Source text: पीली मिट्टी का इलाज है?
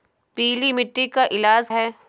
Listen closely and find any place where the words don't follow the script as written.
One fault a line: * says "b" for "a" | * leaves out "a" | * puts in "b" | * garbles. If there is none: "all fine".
all fine